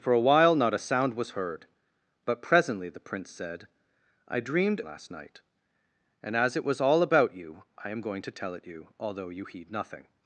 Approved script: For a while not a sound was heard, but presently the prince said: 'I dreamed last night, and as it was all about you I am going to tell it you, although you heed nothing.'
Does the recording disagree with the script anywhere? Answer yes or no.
no